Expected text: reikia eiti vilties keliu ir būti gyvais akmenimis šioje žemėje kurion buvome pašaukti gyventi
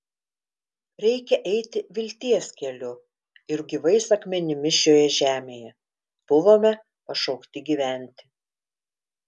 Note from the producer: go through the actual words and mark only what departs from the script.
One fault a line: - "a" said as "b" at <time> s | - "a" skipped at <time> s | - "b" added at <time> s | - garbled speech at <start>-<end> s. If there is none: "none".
- "būti" skipped at 3.6 s
- "kurion" skipped at 5.7 s